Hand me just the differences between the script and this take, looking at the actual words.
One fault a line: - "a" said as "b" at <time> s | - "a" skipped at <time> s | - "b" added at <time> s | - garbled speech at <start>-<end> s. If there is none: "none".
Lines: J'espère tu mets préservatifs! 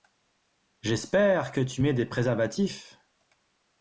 - "que" added at 1.5 s
- "des" added at 1.9 s